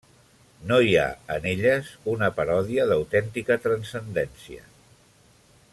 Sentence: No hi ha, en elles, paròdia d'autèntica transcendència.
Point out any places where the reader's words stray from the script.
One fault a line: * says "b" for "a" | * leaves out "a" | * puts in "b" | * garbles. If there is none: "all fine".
* puts in "una"